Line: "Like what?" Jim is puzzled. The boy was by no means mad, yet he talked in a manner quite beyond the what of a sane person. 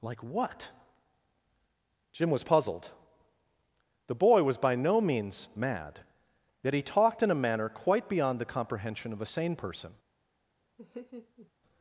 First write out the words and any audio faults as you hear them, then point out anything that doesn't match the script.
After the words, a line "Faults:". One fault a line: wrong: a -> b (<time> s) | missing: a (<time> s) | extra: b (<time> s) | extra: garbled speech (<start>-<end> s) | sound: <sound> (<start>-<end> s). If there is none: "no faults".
"Like what?" Jim was puzzled. The boy was by no means mad, yet he talked in a manner quite beyond the comprehension of a sane person.
Faults:
wrong: is -> was (2.3 s)
wrong: what -> comprehension (8.4 s)
sound: laugh (10.8-11.5 s)